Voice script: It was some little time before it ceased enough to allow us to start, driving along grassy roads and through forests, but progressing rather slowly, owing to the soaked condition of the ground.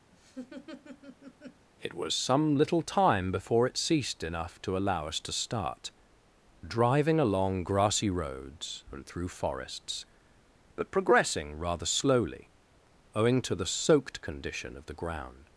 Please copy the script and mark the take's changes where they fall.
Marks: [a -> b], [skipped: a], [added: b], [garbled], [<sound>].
[laugh] It was some little time before it ceased enough to allow us to start, driving along grassy roads and through forests, but progressing rather slowly, owing to the soaked condition of the ground.